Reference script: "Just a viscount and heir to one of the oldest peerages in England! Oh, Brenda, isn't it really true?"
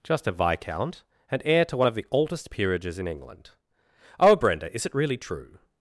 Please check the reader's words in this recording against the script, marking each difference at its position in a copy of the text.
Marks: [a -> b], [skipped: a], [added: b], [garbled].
"Just a viscount and heir to one of the oldest peerages in England! Oh, Brenda, [isn't -> is] it really true?"